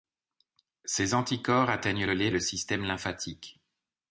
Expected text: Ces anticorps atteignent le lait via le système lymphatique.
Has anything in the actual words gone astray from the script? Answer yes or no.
yes